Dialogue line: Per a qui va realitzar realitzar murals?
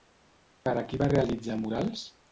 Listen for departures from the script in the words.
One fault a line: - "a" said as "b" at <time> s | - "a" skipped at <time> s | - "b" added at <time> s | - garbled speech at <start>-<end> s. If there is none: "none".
- "realitzar" skipped at 1.6 s